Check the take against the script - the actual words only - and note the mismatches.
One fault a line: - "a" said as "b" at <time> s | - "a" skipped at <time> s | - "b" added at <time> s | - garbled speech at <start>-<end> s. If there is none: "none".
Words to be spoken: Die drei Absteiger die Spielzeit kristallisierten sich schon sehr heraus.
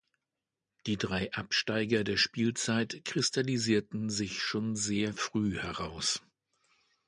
- "die" said as "der" at 2.0 s
- "früh" added at 5.1 s